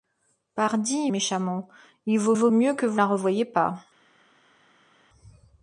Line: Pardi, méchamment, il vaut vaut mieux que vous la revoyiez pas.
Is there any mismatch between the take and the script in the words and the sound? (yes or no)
no